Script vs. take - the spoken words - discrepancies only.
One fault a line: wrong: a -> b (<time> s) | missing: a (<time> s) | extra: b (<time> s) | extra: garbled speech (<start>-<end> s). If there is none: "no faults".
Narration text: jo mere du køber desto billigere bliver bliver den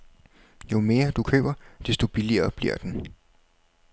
missing: bliver (2.8 s)